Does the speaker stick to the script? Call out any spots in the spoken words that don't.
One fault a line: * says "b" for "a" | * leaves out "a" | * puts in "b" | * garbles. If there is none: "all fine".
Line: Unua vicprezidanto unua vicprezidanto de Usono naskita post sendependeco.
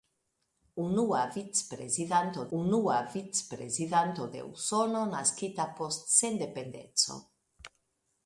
all fine